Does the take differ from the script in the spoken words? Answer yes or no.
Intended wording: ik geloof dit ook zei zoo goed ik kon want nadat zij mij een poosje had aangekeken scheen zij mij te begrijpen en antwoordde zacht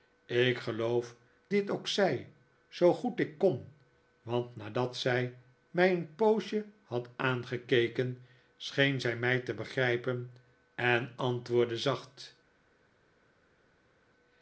no